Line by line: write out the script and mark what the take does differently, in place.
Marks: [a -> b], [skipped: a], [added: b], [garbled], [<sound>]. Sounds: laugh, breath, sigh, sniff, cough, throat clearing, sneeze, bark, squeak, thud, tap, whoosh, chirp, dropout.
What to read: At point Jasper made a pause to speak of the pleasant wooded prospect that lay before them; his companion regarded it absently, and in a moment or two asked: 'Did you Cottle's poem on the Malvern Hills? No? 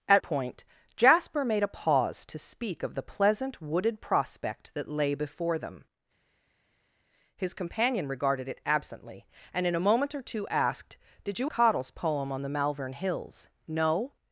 At point Jasper made a pause to speak of the pleasant wooded prospect that lay before them; his companion regarded it absently, and in a moment or two asked: 'Did you Cottle's poem on the Malvern Hills? No?